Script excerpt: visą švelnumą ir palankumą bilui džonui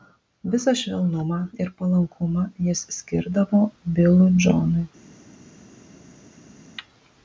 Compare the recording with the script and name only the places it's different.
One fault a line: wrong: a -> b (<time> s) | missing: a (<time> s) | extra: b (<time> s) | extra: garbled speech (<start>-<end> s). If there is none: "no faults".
extra: jis skirdavo (2.7 s)